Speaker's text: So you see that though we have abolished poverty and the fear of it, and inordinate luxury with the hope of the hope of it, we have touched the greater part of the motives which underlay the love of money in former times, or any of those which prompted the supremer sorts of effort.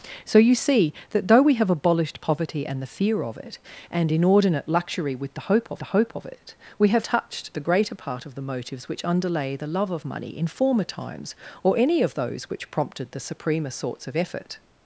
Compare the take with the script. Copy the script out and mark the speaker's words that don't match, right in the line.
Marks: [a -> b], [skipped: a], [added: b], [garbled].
So you see that though we have abolished poverty and the fear of it, and inordinate luxury with the hope of the hope of it, we have touched the greater part of the motives which underlay the love of money in former times, or any of those which prompted the supremer sorts of effort.